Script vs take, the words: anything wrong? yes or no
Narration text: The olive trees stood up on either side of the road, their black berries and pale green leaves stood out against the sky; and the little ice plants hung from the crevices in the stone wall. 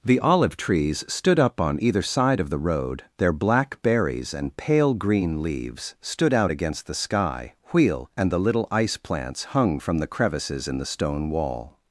yes